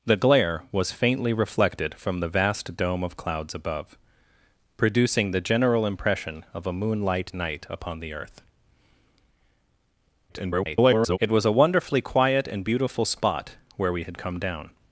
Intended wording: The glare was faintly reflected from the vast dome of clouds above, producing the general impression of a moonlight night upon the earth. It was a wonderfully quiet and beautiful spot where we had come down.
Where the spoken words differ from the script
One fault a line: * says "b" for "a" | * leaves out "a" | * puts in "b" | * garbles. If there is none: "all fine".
* garbles